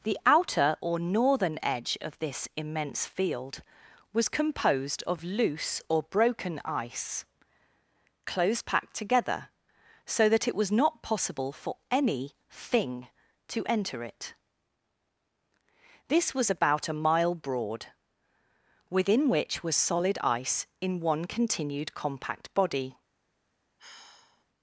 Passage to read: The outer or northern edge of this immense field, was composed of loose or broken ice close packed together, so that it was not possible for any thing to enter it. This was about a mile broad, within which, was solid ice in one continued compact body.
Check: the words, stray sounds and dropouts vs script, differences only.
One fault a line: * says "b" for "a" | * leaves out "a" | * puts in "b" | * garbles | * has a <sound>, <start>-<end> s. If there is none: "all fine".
* has a sigh, 23.8-24.4 s